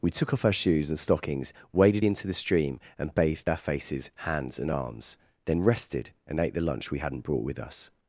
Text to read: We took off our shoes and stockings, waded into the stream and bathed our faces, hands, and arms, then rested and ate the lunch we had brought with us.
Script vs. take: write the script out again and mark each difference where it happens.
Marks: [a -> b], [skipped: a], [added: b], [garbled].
We took off our shoes and stockings, waded into the stream and bathed our faces, hands, and arms, then rested and ate the lunch we [had -> hadn't] brought with us.